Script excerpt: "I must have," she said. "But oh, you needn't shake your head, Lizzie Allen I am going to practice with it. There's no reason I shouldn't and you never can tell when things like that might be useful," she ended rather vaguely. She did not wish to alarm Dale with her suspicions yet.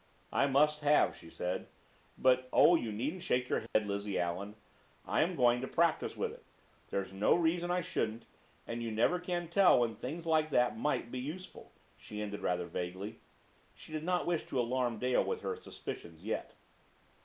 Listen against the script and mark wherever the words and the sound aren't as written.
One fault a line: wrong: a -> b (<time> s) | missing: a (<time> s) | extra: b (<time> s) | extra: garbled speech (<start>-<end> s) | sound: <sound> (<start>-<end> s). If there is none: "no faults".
sound: dropout (3.7-3.8 s)